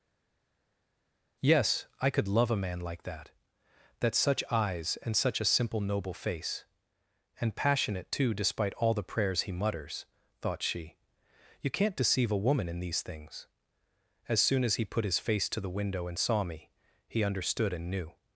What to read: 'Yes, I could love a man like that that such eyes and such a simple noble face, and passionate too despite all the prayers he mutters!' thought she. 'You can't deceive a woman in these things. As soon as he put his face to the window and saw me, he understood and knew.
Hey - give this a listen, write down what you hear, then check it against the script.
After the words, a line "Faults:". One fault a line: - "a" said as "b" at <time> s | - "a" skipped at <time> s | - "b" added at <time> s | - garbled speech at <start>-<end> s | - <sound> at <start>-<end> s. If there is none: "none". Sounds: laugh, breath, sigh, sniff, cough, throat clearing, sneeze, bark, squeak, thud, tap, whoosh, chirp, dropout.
'Yes, I could love a man like that that such eyes and such a simple noble face, and passionate too despite all the prayers he mutters!' thought she. 'You can't deceive a woman in these things. As soon as he put his face to the window and saw me, he understood and knew.
Faults:
none